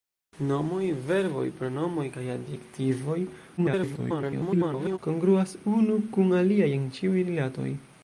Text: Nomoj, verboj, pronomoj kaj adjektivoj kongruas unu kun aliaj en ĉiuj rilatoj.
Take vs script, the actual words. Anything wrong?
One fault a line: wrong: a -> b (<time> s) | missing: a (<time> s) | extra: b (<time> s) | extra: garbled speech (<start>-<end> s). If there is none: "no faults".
extra: garbled speech (3.6-5.0 s)